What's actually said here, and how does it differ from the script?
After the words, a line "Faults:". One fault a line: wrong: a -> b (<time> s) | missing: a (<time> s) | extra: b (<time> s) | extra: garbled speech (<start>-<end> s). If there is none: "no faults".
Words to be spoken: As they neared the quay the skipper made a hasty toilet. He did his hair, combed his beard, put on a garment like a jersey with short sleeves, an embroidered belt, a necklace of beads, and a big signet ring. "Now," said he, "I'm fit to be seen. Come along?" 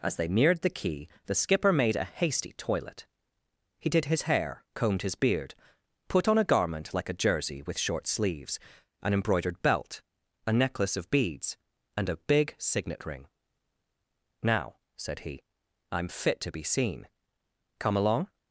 As they neared the quay the skipper made a hasty toilet. He did his hair, combed his beard, put on a garment like a jersey with short sleeves, an embroidered belt, a necklace of beads, and a big signet ring. "Now," said he, "I'm fit to be seen. Come along?"
Faults:
no faults